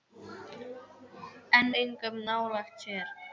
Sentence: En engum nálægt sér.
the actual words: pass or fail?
pass